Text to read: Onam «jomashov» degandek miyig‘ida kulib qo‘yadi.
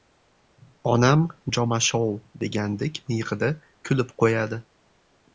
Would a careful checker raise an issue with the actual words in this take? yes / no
no